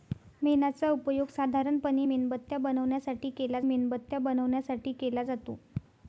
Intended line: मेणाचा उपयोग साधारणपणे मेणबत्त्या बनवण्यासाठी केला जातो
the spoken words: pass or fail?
fail